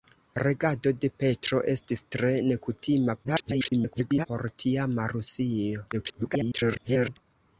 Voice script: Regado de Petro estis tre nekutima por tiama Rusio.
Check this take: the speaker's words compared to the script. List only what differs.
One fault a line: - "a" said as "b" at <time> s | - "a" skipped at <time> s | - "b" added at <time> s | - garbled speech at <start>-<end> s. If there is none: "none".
- garbled speech at 3.2-4.3 s
- garbled speech at 5.9-7.2 s